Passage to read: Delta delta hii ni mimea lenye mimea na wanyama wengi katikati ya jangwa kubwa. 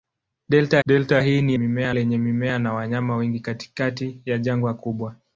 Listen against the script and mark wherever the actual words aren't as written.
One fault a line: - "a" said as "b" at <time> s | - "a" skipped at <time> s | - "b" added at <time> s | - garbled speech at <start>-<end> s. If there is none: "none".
none